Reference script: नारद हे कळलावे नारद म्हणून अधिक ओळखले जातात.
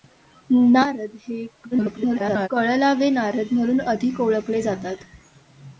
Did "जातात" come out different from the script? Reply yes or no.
no